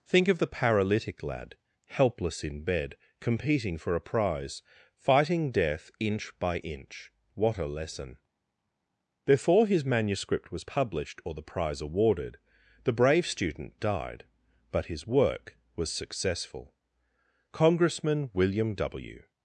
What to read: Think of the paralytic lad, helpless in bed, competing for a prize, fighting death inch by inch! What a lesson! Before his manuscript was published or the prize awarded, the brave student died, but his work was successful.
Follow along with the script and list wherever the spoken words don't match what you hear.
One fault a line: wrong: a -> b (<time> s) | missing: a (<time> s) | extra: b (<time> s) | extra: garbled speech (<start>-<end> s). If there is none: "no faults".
extra: Congressman William W (17.5 s)